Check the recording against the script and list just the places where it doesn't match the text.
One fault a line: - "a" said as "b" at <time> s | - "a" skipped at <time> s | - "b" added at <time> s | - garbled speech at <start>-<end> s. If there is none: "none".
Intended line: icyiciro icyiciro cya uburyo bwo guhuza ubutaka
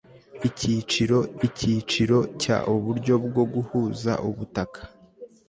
none